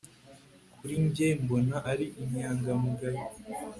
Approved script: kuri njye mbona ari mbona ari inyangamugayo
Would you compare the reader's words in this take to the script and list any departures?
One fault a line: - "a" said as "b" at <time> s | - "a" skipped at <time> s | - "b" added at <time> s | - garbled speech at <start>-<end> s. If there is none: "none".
- "mbona ari" skipped at 2.0 s